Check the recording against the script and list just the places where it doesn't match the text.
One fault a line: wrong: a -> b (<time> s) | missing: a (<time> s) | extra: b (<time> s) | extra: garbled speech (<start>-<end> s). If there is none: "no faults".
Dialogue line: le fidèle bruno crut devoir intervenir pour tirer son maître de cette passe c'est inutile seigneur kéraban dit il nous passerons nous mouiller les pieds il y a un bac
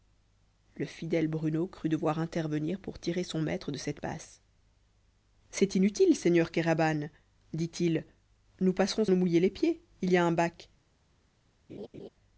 no faults